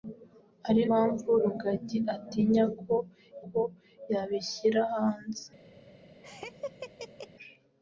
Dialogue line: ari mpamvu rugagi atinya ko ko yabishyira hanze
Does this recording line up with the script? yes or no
yes